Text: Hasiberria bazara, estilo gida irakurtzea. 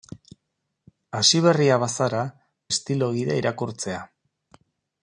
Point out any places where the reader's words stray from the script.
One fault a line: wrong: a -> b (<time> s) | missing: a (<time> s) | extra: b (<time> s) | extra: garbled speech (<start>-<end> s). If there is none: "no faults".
no faults